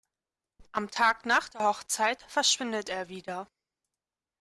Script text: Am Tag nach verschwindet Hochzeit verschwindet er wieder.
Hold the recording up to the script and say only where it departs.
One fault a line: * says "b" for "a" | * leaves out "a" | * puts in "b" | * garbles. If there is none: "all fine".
* says "der" for "verschwindet"